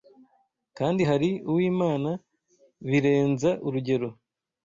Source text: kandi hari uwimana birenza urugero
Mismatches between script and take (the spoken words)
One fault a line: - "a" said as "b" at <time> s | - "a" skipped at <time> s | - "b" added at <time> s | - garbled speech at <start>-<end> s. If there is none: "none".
none